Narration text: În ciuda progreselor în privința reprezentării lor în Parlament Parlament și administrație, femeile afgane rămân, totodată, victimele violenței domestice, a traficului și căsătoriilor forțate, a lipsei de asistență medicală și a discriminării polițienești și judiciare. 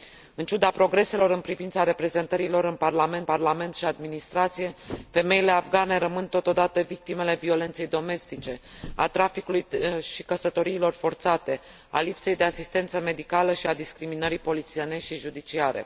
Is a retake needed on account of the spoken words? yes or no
no